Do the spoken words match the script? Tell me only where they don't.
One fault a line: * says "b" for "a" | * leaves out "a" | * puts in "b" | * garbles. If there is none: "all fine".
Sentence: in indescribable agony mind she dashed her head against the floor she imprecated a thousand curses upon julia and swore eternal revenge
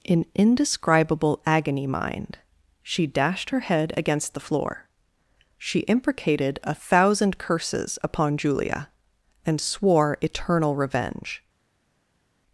all fine